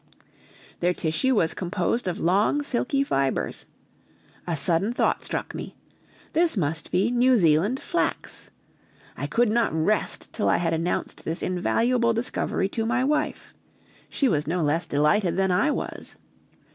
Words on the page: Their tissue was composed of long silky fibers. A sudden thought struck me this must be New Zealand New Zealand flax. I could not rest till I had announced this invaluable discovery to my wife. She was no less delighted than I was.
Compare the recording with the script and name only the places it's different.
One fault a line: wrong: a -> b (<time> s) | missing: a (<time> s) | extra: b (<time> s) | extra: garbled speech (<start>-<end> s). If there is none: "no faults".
missing: New Zealand (7.8 s)